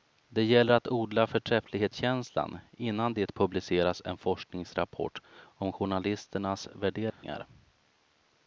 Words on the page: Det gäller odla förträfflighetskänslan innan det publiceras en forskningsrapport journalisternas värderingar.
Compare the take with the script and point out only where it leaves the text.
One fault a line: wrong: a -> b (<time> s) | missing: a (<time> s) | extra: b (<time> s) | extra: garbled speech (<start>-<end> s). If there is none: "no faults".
extra: att (0.7 s)
extra: om (5.4 s)